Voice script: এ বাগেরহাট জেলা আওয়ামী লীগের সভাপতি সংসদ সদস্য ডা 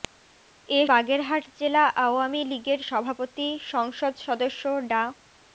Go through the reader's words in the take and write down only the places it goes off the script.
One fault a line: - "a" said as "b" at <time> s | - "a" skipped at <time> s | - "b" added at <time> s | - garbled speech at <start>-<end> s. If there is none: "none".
none